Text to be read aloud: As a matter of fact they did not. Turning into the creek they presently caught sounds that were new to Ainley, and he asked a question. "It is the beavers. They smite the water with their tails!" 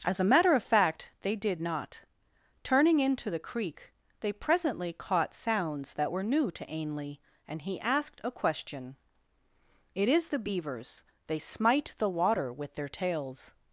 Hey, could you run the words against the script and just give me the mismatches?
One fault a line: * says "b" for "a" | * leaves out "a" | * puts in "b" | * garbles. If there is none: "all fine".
all fine